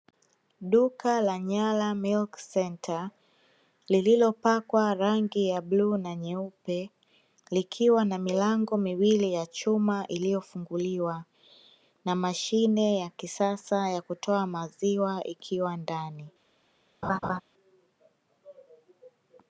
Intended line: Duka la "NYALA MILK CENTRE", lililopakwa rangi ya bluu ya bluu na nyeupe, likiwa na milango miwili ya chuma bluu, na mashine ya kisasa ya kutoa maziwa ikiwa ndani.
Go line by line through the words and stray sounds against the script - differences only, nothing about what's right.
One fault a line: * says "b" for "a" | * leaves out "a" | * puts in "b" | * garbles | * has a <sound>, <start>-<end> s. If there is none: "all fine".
* leaves out "ya bluu"
* says "iliyofunguliwa" for "bluu"
* has a laugh, 17.0-17.4 s